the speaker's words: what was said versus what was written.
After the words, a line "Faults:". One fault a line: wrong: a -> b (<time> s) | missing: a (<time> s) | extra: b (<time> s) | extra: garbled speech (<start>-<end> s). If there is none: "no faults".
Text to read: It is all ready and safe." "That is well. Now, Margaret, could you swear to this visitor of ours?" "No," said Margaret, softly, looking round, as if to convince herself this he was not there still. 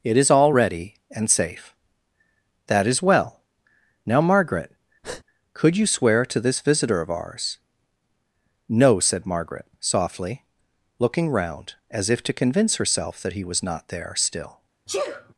It is all ready and safe." "That is well. Now, Margaret, could you swear to this visitor of ours?" "No," said Margaret, softly, looking round, as if to convince herself that he was not there still.
Faults:
wrong: this -> that (13.2 s)